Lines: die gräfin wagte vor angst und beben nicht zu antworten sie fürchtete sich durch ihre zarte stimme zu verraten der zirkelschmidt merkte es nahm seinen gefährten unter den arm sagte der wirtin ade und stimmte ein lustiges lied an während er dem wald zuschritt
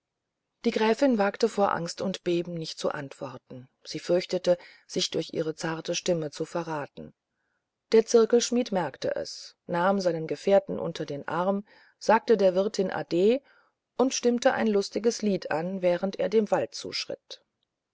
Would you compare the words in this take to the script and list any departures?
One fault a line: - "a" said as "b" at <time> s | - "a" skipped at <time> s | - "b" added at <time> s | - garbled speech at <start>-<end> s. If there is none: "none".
none